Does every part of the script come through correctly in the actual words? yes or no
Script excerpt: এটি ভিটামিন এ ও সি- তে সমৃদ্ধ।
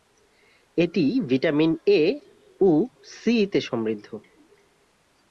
yes